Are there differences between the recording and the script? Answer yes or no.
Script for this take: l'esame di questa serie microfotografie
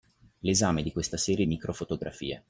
no